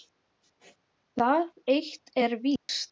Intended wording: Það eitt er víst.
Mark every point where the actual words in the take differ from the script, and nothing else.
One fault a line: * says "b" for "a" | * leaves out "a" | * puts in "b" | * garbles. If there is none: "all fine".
all fine